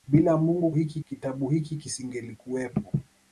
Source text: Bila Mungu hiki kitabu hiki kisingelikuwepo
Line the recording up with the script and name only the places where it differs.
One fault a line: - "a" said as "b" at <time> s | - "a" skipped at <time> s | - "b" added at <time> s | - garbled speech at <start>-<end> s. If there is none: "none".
none